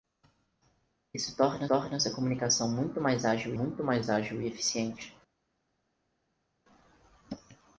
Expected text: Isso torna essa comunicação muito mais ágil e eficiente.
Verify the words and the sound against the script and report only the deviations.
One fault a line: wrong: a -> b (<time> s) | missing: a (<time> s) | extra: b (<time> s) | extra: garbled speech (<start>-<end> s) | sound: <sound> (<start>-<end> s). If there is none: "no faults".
extra: torna (1.7 s)
extra: muito mais ágil (3.5 s)